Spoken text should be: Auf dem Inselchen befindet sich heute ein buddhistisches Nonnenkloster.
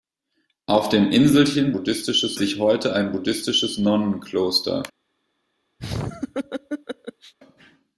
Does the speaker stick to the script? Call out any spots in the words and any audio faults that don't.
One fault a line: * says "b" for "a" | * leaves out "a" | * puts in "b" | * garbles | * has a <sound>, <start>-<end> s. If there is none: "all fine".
* says "buddhistisches" for "befindet"
* has a laugh, 5.8-7.3 s